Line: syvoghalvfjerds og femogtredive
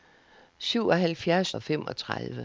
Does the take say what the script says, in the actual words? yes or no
yes